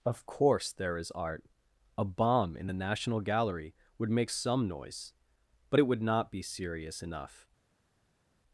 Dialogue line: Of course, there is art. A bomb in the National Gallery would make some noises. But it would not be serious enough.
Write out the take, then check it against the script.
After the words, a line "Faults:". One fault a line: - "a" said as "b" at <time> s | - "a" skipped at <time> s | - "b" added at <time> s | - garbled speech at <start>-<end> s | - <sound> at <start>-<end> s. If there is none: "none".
Of course, there is art. A bomb in the National Gallery would make some noise. But it would not be serious enough.
Faults:
- "noises" said as "noise" at 4.7 s